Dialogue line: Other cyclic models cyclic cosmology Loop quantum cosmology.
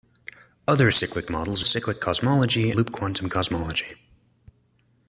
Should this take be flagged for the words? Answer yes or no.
no